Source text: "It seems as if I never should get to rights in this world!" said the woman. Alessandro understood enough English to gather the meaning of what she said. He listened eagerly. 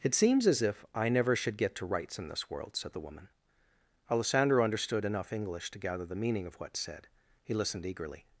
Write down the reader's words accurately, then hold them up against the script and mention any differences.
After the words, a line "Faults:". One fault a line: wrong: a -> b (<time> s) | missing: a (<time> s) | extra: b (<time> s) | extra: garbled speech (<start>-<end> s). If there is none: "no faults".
"It seems as if I never should get to rights in this world!" said the woman. Alessandro understood enough English to gather the meaning of what said. He listened eagerly.
Faults:
missing: she (6.8 s)